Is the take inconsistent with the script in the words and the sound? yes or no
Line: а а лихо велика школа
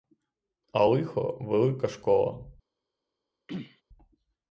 yes